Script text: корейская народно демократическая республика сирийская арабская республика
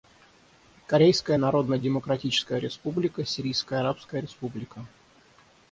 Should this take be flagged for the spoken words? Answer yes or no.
no